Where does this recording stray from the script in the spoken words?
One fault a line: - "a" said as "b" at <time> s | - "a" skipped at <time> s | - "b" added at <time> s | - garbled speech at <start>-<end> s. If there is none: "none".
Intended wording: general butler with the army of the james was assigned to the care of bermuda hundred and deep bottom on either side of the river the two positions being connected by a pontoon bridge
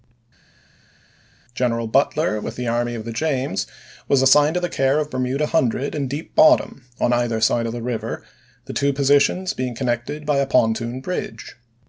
none